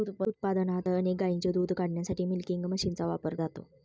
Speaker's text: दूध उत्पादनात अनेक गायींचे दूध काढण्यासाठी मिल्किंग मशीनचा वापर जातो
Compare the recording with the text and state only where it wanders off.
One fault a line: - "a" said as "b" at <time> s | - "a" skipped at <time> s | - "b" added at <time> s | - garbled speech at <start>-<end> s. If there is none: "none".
none